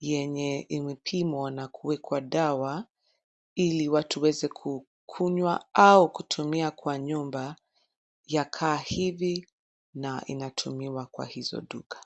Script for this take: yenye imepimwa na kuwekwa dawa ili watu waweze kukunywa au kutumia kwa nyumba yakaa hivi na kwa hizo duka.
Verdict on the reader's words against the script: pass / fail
fail